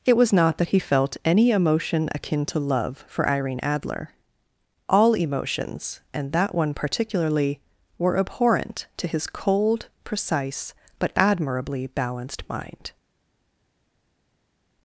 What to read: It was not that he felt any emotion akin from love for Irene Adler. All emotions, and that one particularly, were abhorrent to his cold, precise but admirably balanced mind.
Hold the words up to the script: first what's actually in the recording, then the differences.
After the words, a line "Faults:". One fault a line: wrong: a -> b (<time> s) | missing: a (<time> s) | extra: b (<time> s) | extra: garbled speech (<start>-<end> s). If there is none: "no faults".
It was not that he felt any emotion akin to love for Irene Adler. All emotions, and that one particularly, were abhorrent to his cold, precise but admirably balanced mind.
Faults:
wrong: from -> to (2.5 s)